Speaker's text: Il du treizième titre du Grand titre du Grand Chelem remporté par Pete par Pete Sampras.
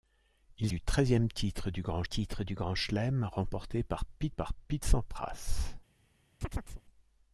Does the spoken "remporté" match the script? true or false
true